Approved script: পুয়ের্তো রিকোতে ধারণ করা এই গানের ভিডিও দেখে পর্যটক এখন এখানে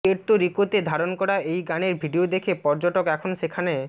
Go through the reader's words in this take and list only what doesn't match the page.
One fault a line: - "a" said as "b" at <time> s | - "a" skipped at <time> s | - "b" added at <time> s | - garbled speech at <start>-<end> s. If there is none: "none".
- "এখানে" said as "সেখানে" at 3.4 s